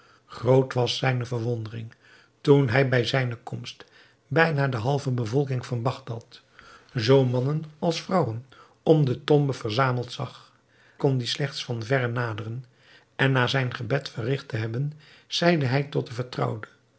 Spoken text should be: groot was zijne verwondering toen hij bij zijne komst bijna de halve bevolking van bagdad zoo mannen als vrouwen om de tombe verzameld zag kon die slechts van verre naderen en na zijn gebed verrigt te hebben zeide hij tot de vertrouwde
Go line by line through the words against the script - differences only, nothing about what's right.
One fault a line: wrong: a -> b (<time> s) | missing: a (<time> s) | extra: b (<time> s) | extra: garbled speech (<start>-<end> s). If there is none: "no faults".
no faults